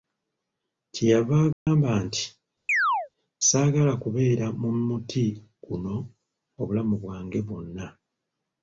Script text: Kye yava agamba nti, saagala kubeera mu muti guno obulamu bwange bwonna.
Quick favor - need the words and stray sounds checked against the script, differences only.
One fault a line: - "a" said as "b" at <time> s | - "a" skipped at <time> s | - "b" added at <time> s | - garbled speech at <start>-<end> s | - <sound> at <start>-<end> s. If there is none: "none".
- dropout at 1.5-1.7 s
- chirp at 2.7-3.1 s